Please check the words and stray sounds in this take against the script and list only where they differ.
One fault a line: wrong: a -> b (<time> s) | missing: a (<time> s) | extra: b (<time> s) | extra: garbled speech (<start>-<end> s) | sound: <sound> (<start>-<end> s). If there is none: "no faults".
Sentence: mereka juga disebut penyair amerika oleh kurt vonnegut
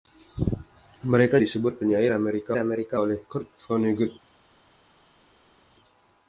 missing: juga (1.4 s)
extra: amerika (2.5 s)